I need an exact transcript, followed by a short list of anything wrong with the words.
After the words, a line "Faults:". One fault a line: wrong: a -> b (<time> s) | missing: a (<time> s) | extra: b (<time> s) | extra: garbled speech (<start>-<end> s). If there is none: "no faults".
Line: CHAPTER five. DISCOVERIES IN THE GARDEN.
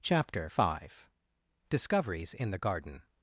CHAPTER five. DISCOVERIES IN THE GARDEN.
Faults:
no faults